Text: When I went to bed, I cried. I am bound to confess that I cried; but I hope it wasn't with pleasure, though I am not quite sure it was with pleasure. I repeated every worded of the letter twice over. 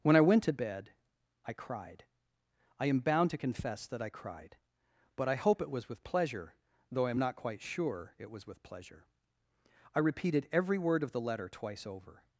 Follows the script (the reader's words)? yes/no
no